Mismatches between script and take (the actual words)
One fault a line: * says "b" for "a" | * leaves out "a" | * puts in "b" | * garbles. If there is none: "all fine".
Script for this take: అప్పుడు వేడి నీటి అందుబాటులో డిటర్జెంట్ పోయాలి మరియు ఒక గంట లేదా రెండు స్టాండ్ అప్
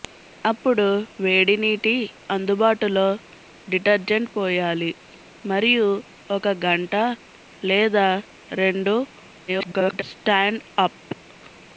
* garbles